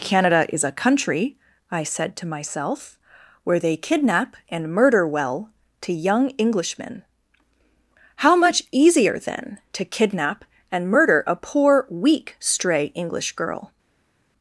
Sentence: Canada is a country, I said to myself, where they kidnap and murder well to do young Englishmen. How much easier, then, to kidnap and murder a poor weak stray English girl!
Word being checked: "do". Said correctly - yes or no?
no